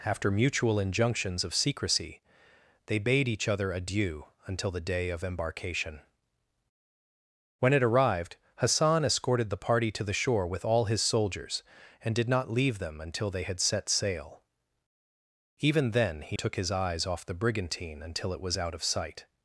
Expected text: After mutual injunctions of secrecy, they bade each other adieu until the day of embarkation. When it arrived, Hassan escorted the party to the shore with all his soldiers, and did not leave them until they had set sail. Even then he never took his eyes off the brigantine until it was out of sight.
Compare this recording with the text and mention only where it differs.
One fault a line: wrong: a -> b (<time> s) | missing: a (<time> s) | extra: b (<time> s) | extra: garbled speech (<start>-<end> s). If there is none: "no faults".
missing: never (16.4 s)